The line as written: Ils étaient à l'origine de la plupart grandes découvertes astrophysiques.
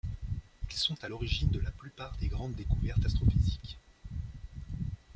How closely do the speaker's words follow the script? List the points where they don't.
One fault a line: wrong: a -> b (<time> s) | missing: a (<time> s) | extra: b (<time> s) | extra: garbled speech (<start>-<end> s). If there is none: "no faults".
wrong: étaient -> sont (0.8 s)
extra: des (2.2 s)